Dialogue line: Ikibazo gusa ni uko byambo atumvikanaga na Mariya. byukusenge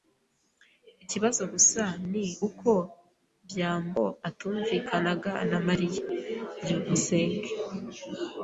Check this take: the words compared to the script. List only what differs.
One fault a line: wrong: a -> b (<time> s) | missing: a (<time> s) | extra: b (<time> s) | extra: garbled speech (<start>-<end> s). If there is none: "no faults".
no faults